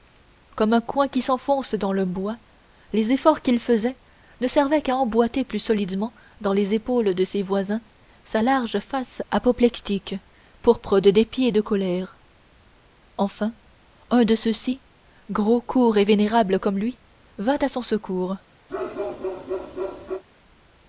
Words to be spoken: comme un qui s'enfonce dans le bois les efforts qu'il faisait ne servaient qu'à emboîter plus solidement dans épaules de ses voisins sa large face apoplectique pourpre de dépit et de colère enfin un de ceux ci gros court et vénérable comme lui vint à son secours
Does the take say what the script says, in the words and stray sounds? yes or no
no